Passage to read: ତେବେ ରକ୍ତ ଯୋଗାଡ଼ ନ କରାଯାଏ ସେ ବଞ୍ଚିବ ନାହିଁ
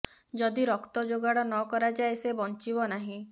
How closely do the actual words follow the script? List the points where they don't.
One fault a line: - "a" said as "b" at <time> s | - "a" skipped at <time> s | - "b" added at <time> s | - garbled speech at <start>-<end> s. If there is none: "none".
- "ତେବେ" said as "ଯଦି" at 0.3 s